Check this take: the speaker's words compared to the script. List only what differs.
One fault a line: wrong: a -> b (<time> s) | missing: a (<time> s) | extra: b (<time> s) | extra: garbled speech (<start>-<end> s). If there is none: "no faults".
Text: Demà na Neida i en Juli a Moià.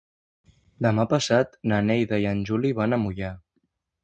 extra: passat (1.1 s)
extra: van (2.8 s)